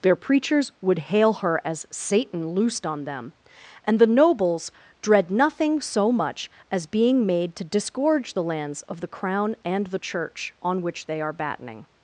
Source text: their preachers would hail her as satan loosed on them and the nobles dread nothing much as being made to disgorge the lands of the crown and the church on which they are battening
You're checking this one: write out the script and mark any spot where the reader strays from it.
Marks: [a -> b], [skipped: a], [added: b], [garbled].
their preachers would hail her as satan loosed on them and the nobles dread nothing [added: so] much as being made to disgorge the lands of the crown and the church on which they are battening